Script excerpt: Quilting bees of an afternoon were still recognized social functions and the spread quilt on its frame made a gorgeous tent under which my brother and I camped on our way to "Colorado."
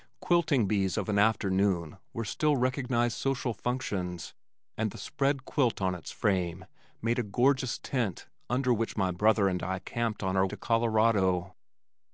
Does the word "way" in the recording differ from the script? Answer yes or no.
yes